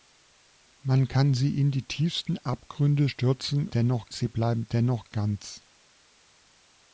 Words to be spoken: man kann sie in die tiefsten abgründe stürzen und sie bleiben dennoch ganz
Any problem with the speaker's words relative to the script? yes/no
yes